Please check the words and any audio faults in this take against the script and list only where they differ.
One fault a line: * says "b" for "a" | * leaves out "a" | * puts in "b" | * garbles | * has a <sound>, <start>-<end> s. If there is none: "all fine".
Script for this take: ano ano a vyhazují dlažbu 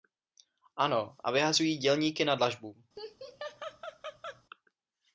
* leaves out "ano"
* puts in "dělníky na"
* has a laugh, 3.0-4.4 s